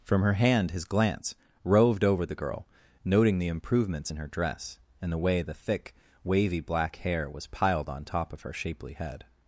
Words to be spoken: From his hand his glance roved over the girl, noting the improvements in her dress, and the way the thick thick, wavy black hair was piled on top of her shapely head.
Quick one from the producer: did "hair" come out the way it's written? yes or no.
yes